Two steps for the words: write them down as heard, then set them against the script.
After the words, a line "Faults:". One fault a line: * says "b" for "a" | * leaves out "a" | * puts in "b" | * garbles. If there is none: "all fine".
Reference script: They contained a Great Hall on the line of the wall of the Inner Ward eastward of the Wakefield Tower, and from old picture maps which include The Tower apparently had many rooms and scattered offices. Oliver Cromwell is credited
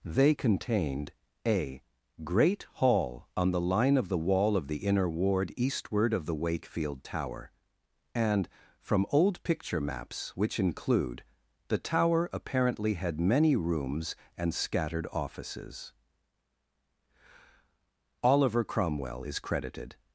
They contained a Great Hall on the line of the wall of the Inner Ward eastward of the Wakefield Tower, and from old picture maps which include The Tower apparently had many rooms and scattered offices. Oliver Cromwell is credited
Faults:
all fine